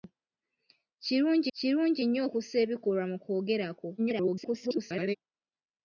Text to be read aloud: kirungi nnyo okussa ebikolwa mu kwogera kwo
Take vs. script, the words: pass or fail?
fail